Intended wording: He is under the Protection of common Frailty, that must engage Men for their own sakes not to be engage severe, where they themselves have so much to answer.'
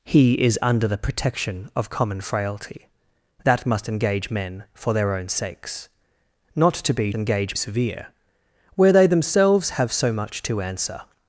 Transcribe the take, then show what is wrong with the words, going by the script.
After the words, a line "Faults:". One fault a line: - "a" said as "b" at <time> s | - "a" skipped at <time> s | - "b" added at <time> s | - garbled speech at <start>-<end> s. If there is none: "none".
He is under the Protection of common Frailty, that must engage Men for their own sakes not to be engage severe, where they themselves have so much to answer.'
Faults:
none